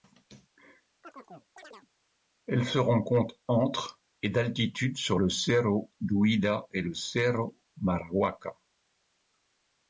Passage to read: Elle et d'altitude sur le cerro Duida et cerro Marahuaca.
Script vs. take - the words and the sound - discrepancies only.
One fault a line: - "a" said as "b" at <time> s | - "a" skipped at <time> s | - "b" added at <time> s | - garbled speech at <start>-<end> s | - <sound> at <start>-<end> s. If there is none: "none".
- chirp at 1.0-1.9 s
- "se rencontre entre" added at 2.6 s
- "le" added at 6.8 s